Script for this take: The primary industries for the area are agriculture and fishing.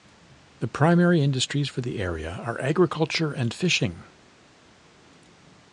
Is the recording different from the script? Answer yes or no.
no